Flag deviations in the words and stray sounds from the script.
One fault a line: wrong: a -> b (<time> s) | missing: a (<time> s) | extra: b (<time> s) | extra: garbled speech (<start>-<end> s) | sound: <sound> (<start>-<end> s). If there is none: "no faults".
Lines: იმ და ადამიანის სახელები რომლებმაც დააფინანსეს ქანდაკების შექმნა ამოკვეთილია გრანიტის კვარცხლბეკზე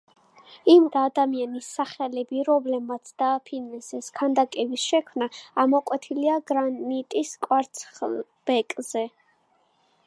no faults